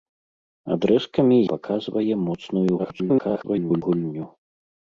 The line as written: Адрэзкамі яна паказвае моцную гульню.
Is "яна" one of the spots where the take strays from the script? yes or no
yes